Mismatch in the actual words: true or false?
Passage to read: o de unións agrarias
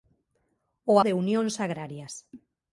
false